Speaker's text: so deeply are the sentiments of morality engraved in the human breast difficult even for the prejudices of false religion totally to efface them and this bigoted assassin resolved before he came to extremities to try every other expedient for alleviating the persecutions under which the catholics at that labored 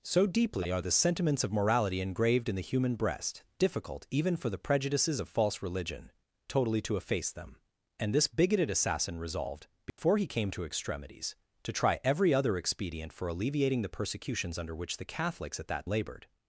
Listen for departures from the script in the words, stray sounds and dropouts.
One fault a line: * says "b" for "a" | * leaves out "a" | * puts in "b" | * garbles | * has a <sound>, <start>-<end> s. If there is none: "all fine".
* has a dropout, 9.9-10.0 s